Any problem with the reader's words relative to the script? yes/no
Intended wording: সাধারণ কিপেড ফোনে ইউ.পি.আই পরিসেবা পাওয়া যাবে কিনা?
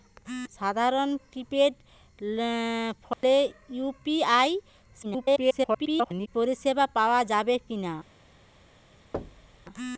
yes